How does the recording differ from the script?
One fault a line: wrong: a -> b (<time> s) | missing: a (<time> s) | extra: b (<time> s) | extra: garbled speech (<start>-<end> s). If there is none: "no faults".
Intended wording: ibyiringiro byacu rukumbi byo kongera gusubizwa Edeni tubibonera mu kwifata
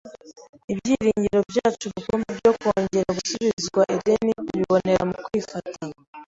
no faults